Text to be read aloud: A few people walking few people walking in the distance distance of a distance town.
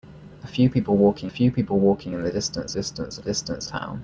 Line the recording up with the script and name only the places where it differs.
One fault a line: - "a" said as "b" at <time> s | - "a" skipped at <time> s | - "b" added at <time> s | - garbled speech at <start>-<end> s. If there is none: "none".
none